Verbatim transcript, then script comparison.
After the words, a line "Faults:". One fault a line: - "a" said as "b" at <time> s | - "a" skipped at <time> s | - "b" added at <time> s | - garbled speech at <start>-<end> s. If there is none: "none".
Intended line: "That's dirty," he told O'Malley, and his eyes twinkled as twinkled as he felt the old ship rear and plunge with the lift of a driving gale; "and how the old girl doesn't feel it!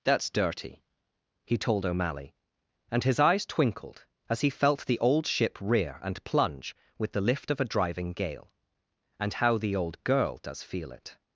"That's dirty," he told O'Malley, and his eyes twinkled as he felt the old ship rear and plunge with the lift of a driving gale; "and how the old girl does feel it!
Faults:
- "twinkled as" skipped at 4.4 s
- "doesn't" said as "does" at 10.4 s